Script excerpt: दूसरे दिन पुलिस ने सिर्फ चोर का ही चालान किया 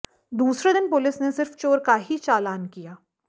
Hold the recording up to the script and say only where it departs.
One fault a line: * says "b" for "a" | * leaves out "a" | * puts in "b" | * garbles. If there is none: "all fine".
all fine